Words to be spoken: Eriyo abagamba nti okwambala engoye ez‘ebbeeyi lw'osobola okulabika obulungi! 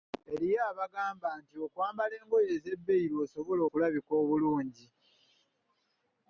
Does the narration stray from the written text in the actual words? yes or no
no